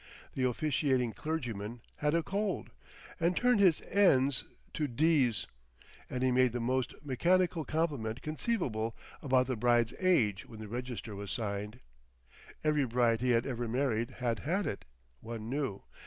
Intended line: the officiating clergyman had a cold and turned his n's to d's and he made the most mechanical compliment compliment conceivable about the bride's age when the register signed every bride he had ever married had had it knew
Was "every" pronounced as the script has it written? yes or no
yes